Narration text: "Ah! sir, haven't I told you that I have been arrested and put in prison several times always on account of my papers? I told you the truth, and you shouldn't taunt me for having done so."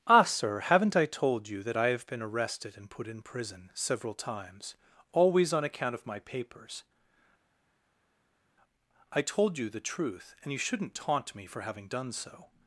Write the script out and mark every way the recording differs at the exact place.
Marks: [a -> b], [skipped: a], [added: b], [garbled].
"Ah! sir, haven't I told you that I have been arrested and put in prison several times always on account of my papers? I told you the truth, and you shouldn't taunt me for having done so."